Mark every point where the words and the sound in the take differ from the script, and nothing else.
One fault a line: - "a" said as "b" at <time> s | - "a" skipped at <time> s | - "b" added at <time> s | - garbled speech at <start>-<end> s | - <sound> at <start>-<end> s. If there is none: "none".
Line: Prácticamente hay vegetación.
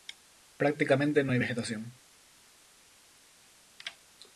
- "no" added at 1.2 s